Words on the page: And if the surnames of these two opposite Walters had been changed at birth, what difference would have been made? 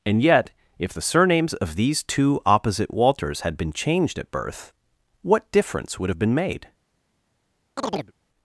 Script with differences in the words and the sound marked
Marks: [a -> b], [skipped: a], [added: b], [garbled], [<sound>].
And [added: yet] if the surnames of these two opposite Walters had been changed at birth, what difference would have been made? [chirp]